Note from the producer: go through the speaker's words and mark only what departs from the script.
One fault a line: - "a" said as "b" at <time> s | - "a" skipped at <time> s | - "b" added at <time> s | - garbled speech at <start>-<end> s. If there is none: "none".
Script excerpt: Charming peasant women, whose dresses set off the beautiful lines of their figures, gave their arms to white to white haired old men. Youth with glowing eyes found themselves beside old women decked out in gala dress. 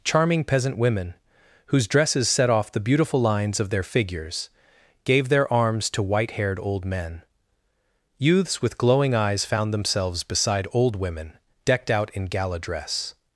- "to white" skipped at 6.3 s
- "Youth" said as "Youths" at 8.2 s